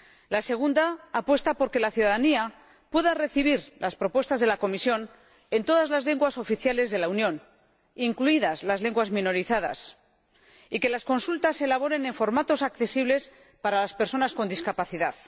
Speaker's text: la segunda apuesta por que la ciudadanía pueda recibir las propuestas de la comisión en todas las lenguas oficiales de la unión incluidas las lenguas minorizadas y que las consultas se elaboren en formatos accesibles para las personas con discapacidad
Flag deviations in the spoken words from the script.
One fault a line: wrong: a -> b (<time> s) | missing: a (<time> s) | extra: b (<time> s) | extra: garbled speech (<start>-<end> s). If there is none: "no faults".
no faults